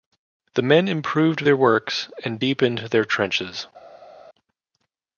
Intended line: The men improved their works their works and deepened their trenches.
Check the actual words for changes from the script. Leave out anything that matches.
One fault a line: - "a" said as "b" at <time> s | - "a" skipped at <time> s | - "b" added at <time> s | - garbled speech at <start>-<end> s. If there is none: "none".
- "their works" skipped at 2.1 s